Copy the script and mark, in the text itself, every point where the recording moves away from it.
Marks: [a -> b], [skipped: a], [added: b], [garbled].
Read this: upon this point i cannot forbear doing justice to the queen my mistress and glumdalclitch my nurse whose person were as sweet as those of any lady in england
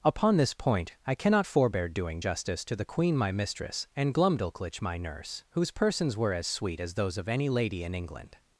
upon this point i cannot forbear doing justice to the queen my mistress and glumdalclitch my nurse whose [person -> persons] were as sweet as those of any lady in england